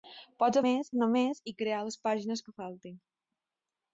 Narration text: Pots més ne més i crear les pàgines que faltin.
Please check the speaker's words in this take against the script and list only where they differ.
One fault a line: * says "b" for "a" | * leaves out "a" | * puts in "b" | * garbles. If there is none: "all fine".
all fine